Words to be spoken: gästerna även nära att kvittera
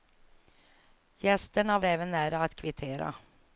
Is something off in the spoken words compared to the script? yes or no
no